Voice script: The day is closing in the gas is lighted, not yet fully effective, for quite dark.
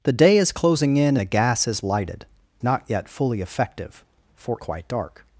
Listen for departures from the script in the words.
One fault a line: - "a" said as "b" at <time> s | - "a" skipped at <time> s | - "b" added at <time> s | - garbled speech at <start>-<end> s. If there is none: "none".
none